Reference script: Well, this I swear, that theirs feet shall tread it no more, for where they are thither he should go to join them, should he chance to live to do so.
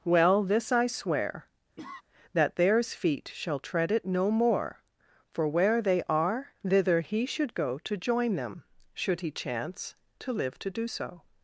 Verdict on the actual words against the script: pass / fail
pass